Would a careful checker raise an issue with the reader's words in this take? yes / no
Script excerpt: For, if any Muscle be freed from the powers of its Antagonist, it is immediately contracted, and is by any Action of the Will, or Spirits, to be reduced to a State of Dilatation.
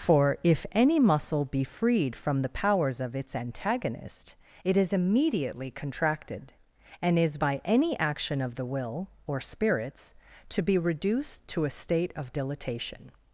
no